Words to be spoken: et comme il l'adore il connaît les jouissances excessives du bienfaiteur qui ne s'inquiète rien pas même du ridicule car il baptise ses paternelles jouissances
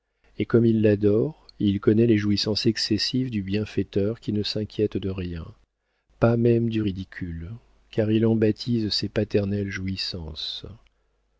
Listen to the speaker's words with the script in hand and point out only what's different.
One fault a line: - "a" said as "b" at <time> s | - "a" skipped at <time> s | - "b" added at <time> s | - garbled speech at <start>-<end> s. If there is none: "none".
- "de" added at 5.0 s
- "en" added at 8.2 s